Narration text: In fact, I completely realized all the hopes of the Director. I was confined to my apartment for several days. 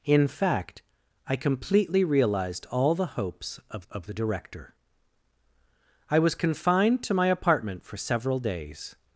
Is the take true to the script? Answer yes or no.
no